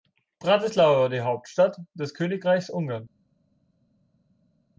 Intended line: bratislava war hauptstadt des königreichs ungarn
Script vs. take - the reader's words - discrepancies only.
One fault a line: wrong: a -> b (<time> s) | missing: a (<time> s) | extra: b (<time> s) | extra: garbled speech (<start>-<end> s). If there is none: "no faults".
extra: die (1.1 s)